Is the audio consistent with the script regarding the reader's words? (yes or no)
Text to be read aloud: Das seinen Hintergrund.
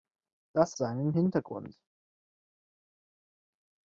yes